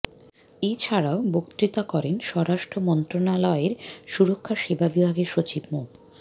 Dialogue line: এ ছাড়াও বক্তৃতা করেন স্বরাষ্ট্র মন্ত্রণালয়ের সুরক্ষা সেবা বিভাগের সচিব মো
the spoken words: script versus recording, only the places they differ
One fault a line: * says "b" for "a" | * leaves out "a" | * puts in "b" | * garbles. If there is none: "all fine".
all fine